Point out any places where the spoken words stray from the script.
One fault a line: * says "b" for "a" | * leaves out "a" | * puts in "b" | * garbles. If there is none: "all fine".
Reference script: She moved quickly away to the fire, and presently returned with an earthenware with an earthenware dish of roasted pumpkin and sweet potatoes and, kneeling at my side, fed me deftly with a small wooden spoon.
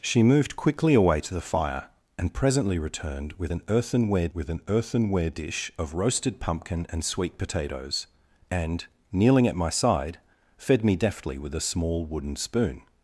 all fine